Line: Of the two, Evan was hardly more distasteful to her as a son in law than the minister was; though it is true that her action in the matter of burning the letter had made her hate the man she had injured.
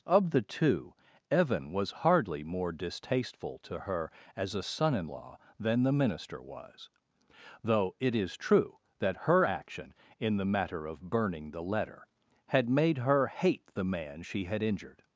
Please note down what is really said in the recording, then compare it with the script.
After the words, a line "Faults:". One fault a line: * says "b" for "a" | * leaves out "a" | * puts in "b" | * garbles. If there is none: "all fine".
Of the two, Evan was hardly more distasteful to her as a son in law than the minister was; though it is true that her action in the matter of burning the letter had made her hate the man she had injured.
Faults:
all fine